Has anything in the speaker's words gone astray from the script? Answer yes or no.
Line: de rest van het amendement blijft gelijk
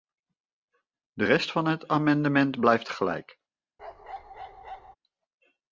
no